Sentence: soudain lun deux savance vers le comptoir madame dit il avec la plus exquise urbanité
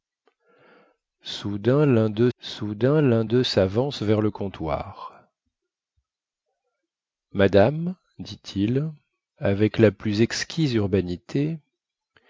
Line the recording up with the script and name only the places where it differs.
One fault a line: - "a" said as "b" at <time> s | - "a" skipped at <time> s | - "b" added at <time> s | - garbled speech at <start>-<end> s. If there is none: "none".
- "soudain lun deux" added at 2.4 s